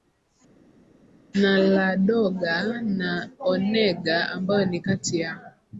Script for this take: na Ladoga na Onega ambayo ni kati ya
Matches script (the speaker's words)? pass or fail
pass